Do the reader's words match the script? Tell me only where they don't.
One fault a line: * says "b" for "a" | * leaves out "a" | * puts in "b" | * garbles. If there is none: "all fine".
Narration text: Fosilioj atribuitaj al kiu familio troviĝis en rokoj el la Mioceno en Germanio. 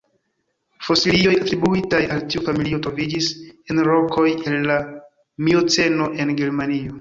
* says "tiu" for "kiu"